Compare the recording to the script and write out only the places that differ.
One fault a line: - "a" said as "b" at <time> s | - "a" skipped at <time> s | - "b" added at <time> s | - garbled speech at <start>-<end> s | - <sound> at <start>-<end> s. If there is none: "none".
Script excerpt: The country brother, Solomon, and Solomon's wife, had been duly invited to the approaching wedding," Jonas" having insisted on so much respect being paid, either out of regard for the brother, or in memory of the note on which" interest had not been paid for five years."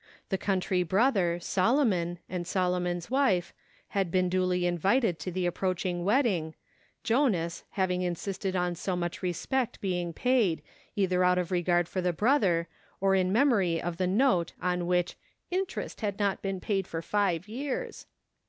none